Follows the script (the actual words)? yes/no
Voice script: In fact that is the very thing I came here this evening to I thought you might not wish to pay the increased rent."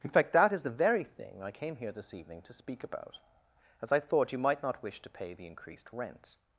no